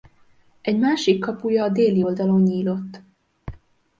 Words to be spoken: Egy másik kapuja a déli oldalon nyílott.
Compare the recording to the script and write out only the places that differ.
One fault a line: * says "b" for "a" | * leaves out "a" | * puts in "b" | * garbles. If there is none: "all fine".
all fine